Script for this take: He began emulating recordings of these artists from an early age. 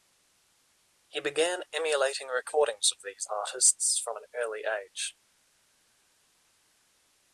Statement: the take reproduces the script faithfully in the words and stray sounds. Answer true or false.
true